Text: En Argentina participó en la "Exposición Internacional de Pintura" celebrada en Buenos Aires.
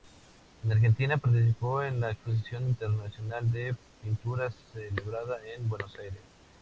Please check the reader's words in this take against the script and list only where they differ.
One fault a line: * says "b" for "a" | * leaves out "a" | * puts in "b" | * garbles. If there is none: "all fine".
all fine